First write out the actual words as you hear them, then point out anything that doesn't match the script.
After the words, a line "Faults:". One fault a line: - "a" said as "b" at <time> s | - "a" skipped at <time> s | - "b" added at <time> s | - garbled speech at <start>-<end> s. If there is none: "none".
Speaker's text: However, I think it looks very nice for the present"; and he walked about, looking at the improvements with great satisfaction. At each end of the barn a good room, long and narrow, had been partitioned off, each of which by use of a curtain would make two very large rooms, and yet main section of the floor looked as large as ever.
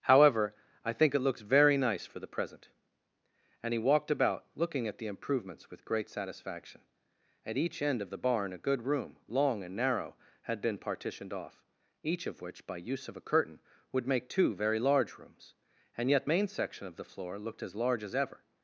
However, I think it looks very nice for the present"; and he walked about, looking at the improvements with great satisfaction. At each end of the barn a good room, long and narrow, had been partitioned off, each of which by use of a curtain would make two very large rooms, and yet main section of the floor looked as large as ever.
Faults:
none